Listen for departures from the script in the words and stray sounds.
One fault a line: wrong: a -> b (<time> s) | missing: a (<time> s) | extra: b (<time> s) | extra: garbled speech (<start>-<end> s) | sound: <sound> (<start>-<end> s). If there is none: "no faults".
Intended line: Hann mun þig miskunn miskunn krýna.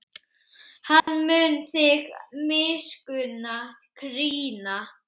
sound: dropout (1.0-1.1 s)
missing: miskunn (3.5 s)